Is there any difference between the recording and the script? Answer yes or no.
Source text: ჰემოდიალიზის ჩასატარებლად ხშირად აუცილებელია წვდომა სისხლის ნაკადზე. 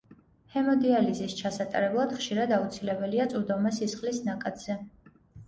no